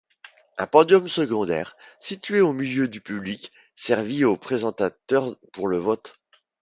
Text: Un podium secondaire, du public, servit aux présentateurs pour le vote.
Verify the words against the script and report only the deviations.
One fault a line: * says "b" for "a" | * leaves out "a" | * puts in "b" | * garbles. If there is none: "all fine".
* puts in "situé au milieu"